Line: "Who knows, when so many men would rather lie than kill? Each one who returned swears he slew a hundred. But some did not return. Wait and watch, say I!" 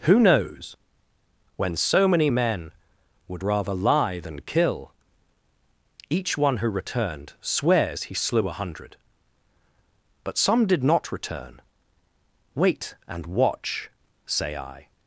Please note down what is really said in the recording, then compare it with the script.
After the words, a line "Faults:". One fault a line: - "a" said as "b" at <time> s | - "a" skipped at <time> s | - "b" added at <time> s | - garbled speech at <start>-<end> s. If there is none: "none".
"Who knows, when so many men would rather lie than kill? Each one who returned swears he slew a hundred. But some did not return. Wait and watch, say I!"
Faults:
none